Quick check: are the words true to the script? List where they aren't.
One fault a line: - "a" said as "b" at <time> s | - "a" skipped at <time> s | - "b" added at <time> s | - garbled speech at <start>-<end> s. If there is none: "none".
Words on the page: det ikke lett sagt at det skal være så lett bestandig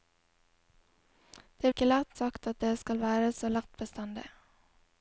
none